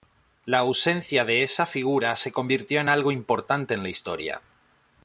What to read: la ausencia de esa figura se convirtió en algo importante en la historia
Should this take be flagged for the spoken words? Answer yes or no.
no